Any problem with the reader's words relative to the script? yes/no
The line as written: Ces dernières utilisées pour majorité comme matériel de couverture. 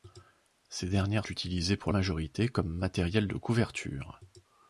no